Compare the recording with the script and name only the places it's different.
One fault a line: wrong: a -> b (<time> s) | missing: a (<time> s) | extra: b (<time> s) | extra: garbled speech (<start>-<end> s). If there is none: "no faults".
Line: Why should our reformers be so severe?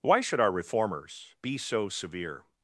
no faults